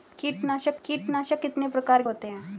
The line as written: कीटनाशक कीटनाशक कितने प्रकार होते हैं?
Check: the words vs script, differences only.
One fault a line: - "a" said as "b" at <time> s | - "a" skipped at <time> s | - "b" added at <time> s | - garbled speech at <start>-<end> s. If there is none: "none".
none